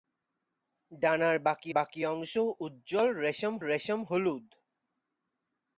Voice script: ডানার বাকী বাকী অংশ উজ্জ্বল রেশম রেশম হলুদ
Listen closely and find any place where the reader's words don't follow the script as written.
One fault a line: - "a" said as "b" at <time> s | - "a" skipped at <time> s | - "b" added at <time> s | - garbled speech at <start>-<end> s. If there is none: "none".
none